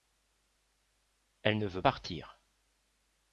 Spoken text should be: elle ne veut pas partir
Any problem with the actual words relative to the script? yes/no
yes